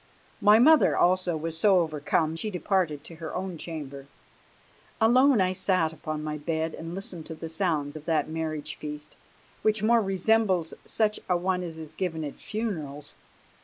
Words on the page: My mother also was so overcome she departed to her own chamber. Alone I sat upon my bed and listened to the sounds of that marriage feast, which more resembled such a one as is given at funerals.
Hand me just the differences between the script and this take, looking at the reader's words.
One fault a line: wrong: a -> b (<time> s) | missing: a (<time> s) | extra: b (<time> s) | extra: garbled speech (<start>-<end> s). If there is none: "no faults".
no faults